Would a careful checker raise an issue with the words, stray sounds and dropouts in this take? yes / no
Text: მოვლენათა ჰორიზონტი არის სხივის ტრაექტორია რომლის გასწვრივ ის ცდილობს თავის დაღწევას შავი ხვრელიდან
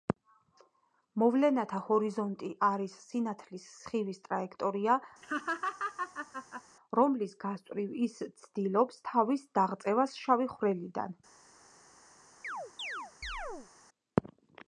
yes